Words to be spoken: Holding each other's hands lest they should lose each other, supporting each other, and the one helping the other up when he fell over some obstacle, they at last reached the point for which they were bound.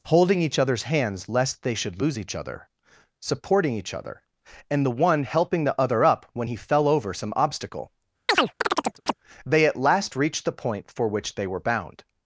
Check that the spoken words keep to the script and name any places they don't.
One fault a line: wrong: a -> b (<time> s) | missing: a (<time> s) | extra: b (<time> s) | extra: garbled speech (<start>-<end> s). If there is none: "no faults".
no faults